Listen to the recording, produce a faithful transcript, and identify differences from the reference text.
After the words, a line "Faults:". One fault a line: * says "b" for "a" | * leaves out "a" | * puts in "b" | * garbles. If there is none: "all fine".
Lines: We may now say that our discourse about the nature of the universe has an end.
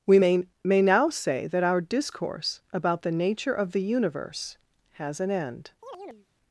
We may may now say that our discourse about the nature of the universe has an end.
Faults:
* puts in "may"